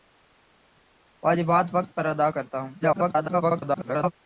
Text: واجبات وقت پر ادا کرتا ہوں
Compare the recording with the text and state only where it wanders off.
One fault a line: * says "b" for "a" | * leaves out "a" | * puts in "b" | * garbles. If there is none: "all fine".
* garbles